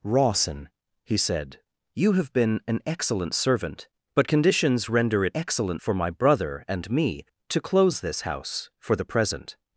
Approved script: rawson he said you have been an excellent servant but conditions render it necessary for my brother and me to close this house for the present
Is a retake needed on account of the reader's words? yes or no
yes